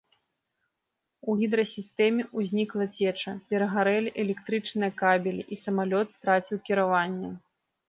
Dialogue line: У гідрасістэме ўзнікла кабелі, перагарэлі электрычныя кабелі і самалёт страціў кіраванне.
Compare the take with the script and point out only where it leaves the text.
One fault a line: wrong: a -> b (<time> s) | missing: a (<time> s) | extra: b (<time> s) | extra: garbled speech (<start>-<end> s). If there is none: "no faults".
wrong: кабелі -> цеча (3.0 s)